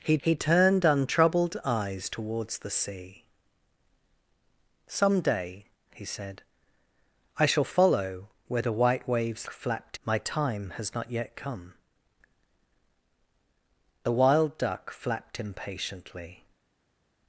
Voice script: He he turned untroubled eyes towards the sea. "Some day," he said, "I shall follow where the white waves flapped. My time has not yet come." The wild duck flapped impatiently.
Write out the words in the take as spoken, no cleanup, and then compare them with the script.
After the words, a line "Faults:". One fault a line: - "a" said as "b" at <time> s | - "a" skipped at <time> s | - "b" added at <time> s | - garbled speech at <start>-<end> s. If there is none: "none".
He he turned untroubled eyes towards the sea. "Some day," he said, "I shall follow where the white waves flapped. My time has not yet come." The wild duck flapped impatiently.
Faults:
none